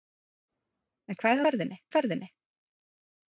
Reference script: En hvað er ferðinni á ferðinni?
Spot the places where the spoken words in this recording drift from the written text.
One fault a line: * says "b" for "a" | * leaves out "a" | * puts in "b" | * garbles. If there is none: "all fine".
all fine